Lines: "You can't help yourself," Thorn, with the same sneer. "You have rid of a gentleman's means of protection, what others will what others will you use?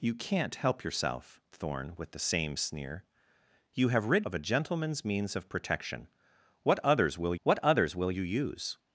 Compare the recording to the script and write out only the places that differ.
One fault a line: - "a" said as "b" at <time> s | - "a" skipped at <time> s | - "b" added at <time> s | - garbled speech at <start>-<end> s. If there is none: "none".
none